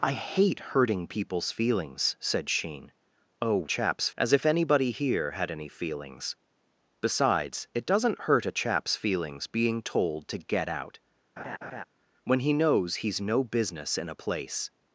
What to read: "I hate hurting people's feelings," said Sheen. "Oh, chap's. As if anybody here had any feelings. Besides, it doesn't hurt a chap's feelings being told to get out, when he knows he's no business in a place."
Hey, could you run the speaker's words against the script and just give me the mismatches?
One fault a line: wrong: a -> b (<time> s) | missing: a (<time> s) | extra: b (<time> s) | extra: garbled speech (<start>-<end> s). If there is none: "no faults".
no faults